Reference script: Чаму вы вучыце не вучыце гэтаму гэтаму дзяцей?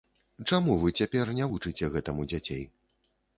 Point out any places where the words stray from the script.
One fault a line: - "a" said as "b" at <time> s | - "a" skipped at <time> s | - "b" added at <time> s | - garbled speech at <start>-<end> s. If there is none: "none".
- "вучыце" said as "цяпер" at 1.0 s
- "гэтаму" skipped at 2.3 s